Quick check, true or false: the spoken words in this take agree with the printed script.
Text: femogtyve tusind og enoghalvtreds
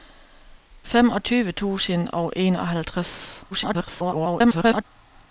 false